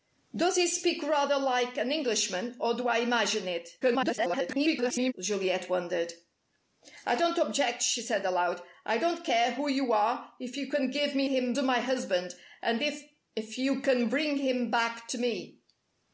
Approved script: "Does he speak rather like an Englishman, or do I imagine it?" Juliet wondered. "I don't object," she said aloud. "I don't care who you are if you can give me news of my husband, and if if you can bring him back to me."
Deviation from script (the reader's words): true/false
true